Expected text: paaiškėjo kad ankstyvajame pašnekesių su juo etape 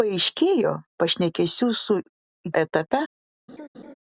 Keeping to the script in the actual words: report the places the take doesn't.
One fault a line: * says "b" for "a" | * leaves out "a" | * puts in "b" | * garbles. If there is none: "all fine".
* leaves out "kad ankstyvajame"
* leaves out "juo"